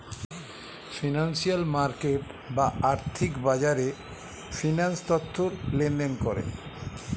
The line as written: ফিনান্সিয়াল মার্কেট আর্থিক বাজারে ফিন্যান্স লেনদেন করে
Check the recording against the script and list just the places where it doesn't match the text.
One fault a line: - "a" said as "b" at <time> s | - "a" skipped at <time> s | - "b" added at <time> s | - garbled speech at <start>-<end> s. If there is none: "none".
- "বা" added at 2.5 s
- "তথ্য" added at 5.1 s